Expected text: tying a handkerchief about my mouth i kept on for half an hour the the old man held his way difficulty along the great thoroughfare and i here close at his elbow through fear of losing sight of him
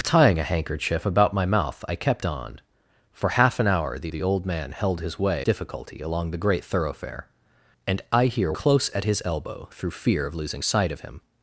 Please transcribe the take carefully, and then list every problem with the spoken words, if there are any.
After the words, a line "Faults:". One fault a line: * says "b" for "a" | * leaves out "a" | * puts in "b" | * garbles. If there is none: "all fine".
tying a handkerchief about my mouth i kept on for half an hour the the old man held his way difficulty along the great thoroughfare and i here close at his elbow through fear of losing sight of him
Faults:
all fine